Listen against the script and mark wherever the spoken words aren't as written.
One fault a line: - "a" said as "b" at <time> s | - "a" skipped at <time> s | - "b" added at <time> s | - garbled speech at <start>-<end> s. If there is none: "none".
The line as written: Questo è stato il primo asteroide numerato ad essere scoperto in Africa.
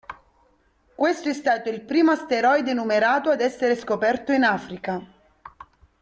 none